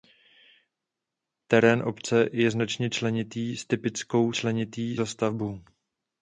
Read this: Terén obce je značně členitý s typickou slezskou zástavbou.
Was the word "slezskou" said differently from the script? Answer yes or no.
yes